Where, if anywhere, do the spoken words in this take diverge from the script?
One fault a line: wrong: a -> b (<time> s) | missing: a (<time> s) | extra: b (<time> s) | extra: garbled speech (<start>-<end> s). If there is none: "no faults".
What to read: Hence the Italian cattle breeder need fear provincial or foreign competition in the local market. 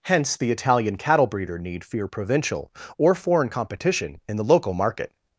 no faults